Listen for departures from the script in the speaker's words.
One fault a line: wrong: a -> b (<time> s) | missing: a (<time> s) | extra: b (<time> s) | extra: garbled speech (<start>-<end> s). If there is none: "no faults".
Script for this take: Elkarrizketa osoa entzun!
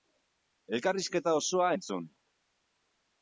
no faults